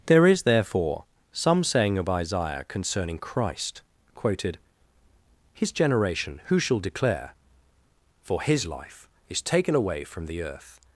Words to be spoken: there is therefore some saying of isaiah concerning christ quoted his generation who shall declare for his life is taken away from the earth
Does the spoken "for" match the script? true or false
true